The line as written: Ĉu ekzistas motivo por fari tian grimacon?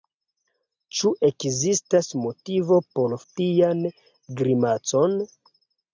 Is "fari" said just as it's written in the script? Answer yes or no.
no